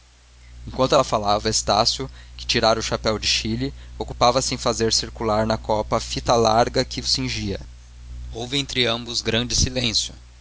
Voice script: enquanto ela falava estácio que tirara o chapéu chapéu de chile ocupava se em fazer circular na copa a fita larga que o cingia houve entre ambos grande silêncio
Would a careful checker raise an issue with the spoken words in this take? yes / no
yes